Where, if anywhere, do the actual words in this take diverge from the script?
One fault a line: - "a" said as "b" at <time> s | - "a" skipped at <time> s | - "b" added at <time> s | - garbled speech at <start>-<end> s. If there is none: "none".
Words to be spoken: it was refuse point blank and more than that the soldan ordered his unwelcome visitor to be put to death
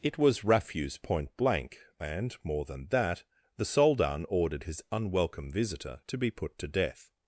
none